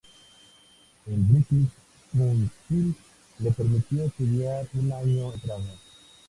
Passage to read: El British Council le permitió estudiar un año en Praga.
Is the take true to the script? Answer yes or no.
yes